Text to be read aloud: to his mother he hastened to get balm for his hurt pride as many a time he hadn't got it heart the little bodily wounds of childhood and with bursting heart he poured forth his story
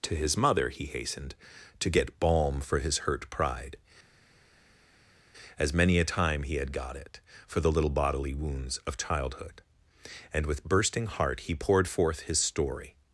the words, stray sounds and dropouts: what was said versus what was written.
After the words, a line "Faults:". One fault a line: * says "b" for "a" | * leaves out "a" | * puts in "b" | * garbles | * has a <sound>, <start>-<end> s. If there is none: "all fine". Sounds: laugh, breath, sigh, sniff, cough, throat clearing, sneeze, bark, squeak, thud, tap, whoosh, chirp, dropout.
to his mother he hastened to get balm for his hurt pride as many a time he had got it for the little bodily wounds of childhood and with bursting heart he poured forth his story
Faults:
* says "had" for "hadn't"
* says "for" for "heart"